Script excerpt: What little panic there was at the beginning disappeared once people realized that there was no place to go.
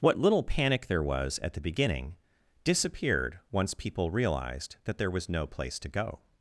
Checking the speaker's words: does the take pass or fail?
pass